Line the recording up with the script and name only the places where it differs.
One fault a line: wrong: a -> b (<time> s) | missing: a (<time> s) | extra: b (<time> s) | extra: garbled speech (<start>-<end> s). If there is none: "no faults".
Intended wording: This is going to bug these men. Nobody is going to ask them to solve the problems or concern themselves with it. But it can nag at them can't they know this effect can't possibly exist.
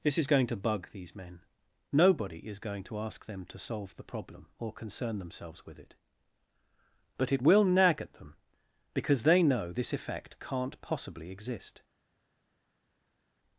wrong: problems -> problem (4.0 s)
wrong: can -> will (7.4 s)
wrong: can't -> because (8.9 s)